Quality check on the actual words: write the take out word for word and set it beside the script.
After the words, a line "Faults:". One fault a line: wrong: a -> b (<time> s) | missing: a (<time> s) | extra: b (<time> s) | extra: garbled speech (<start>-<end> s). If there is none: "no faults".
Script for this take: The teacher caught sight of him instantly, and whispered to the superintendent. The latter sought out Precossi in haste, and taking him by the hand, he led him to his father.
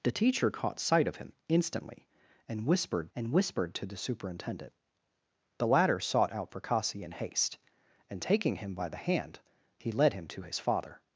The teacher caught sight of him instantly, and whispered and whispered to the superintendent. The latter sought out Precossi in haste, and taking him by the hand, he led him to his father.
Faults:
extra: and whispered (3.1 s)